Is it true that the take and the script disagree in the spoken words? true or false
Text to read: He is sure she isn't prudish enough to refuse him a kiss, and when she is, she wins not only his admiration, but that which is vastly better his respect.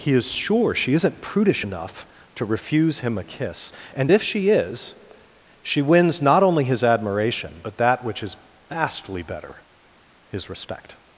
true